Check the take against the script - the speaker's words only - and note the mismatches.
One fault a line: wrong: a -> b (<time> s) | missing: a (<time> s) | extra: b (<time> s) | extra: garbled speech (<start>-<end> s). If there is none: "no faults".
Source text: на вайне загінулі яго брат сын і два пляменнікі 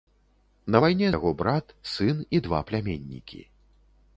missing: загінулі (1.1 s)